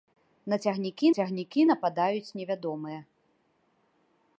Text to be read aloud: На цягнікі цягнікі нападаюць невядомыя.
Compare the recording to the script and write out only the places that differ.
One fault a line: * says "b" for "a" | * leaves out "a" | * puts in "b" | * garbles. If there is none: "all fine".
all fine